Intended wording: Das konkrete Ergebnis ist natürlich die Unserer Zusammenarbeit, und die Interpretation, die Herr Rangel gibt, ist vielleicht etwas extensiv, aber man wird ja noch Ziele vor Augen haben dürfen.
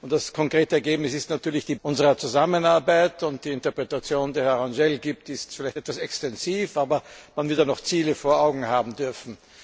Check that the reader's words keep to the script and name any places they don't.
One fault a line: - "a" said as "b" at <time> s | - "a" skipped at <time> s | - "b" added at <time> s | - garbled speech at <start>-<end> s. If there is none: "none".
none